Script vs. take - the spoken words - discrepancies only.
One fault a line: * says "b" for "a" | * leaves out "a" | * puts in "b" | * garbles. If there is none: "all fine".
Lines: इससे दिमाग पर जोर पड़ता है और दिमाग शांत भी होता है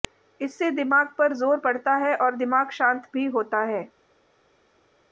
all fine